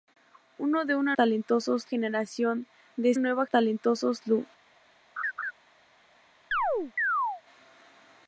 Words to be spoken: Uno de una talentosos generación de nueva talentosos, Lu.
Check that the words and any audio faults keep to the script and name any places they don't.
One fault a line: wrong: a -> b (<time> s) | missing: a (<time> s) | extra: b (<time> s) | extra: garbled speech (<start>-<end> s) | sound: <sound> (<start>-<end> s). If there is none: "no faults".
sound: laugh (5.2-5.5 s)
sound: chirp (6.5-7.4 s)